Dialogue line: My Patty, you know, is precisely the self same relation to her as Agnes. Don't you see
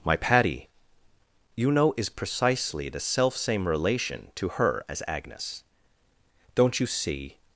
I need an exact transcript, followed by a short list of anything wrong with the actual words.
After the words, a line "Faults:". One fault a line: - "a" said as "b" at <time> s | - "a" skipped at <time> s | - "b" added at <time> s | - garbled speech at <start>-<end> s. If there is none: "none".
My Patty, you know, is precisely the self same relation to her as Agnes. Don't you see
Faults:
none